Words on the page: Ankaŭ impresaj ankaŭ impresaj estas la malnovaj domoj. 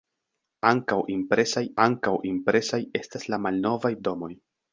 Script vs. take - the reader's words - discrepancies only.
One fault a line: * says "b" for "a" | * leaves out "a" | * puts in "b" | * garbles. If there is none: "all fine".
all fine